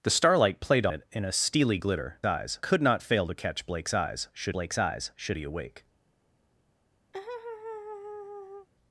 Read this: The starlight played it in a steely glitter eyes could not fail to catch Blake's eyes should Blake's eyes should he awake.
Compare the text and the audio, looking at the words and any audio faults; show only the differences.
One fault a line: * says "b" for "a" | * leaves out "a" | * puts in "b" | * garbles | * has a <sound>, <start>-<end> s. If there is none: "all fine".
* has a laugh, 7.1-8.7 s